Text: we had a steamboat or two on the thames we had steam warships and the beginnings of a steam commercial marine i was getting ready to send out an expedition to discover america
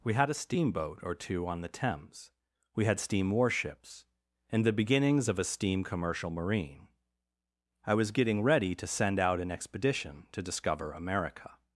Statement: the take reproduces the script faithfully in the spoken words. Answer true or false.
true